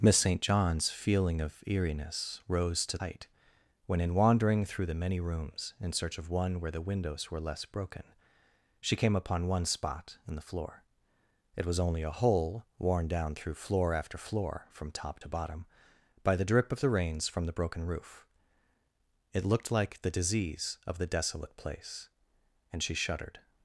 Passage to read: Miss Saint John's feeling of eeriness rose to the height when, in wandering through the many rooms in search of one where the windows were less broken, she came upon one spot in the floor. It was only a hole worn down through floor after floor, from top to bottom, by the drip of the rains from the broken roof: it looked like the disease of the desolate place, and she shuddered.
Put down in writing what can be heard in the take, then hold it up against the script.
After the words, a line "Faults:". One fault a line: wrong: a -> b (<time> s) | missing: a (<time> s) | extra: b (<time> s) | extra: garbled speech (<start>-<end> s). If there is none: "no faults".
Miss Saint John's feeling of eeriness rose to height when, in wandering through the many rooms in search of one where the windows were less broken, she came upon one spot in the floor. It was only a hole worn down through floor after floor, from top to bottom, by the drip of the rains from the broken roof: it looked like the disease of the desolate place, and she shuddered.
Faults:
missing: the (3.0 s)